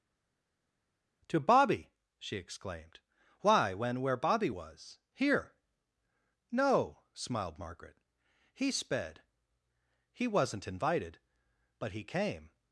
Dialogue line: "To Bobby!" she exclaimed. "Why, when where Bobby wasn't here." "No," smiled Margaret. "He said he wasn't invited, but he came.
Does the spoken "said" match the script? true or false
false